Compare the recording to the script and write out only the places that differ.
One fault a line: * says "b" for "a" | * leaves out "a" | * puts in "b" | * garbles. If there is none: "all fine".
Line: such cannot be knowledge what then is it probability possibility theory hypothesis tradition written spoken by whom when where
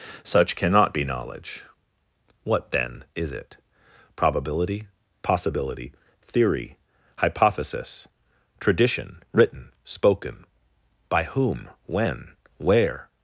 all fine